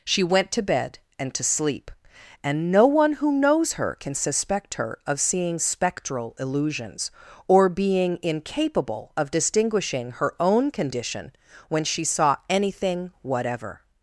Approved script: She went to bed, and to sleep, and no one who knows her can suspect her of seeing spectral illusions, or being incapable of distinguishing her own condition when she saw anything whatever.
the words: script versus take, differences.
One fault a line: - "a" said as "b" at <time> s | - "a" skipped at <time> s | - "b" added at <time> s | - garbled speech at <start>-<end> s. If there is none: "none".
none